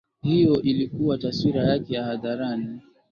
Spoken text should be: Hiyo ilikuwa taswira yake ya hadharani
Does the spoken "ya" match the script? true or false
true